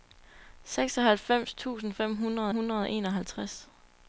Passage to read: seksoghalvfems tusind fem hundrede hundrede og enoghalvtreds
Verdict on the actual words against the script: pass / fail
pass